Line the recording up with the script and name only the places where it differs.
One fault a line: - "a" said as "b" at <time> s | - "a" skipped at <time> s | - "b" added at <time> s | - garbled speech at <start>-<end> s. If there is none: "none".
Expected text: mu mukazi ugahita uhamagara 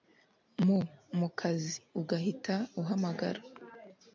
none